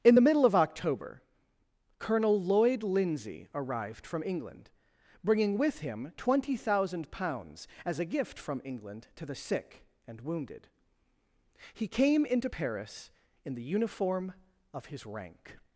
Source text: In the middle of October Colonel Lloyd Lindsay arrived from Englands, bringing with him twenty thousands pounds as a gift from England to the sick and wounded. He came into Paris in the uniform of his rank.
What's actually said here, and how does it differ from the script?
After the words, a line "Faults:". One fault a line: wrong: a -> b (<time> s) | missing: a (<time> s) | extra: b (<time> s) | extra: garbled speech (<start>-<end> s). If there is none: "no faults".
In the middle of October Colonel Lloyd Lindsay arrived from England, bringing with him twenty thousand pounds as a gift from England to the sick and wounded. He came into Paris in the uniform of his rank.
Faults:
wrong: Englands -> England (4.2 s)
wrong: thousands -> thousand (6.6 s)